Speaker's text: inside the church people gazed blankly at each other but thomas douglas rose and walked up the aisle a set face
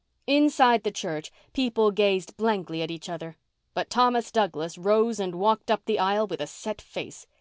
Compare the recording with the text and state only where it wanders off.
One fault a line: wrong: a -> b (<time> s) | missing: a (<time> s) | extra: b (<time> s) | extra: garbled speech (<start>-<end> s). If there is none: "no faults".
extra: with (6.3 s)